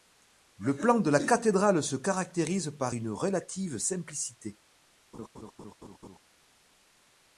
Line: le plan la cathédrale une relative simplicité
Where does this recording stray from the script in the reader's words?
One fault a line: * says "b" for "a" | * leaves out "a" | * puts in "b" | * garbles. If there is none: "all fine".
* puts in "de"
* puts in "se caractérise par"